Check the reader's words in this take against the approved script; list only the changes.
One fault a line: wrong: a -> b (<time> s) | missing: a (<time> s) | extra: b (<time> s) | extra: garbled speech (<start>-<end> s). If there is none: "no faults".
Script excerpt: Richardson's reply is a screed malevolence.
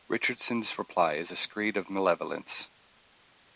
extra: of (1.8 s)